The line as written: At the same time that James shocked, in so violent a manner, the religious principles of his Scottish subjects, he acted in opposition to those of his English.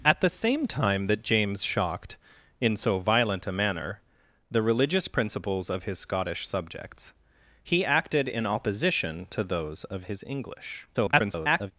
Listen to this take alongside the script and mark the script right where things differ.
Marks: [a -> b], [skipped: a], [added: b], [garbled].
At the same time that James shocked, in so violent a manner, the religious principles of his Scottish subjects, he acted in opposition to those of his English. [garbled]